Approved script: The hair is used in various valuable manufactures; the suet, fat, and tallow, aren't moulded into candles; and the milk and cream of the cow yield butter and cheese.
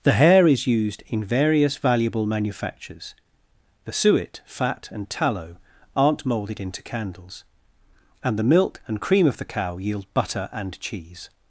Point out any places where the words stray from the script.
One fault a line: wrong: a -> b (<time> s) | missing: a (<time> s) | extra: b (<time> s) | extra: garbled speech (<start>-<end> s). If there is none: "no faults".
no faults